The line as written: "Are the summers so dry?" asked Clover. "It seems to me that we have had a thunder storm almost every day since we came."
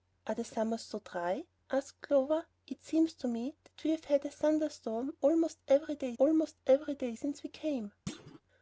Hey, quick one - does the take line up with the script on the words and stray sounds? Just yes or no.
no